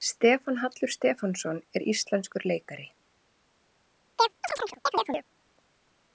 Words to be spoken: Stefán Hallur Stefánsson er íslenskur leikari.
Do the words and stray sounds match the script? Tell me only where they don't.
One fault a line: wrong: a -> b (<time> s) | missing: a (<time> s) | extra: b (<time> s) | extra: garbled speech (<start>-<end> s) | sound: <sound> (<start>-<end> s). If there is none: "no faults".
sound: chirp (4.2-5.3 s)